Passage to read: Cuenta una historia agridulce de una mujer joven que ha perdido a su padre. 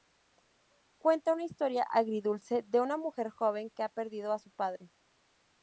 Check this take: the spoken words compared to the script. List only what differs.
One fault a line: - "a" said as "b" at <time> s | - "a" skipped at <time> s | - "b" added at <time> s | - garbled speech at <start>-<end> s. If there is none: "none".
none